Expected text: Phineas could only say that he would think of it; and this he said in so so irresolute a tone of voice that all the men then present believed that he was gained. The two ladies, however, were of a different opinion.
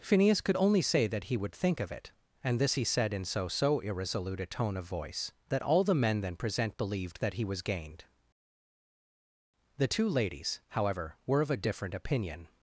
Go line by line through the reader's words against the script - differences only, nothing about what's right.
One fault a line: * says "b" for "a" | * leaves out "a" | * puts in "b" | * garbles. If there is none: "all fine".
all fine